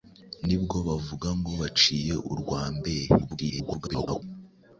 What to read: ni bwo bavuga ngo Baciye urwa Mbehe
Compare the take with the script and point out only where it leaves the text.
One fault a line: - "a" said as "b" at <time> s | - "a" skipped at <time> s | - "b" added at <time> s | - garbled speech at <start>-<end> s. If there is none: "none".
- garbled speech at 3.2-4.2 s